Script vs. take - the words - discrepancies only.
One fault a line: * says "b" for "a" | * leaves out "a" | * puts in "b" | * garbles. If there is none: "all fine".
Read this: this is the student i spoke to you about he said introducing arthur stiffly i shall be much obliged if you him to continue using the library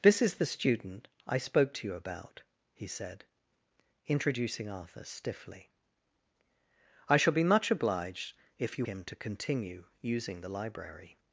all fine